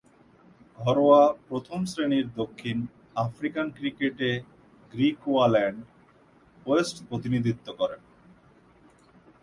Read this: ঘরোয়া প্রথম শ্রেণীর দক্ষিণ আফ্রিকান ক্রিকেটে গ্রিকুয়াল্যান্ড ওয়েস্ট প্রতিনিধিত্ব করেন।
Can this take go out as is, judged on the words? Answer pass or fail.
pass